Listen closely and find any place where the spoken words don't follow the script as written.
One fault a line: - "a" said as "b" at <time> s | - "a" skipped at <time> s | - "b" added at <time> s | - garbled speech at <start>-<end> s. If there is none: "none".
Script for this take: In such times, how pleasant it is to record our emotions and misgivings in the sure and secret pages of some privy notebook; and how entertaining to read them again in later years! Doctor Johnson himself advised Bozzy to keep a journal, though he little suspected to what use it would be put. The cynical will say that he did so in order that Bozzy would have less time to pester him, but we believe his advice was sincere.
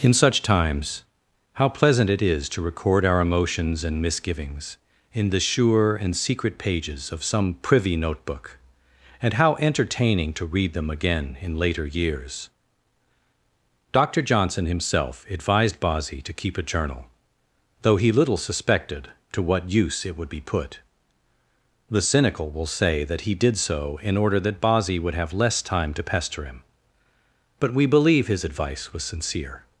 none